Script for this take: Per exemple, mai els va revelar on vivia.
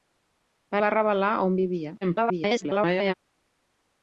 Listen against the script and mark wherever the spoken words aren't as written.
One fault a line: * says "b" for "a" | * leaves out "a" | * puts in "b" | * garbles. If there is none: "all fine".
* leaves out "exemple mai els"
* garbles